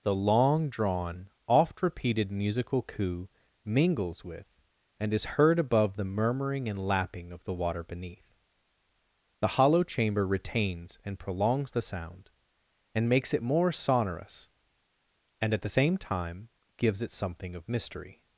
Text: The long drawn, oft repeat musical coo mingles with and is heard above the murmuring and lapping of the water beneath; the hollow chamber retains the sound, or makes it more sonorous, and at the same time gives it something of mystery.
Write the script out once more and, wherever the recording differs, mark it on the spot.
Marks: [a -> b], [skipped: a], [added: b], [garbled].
The long drawn, oft [repeat -> repeated] musical coo mingles with and is heard above the murmuring and lapping of the water beneath; the hollow chamber retains [added: and prolongs] the sound, [or -> and] makes it more sonorous, and at the same time gives it something of mystery.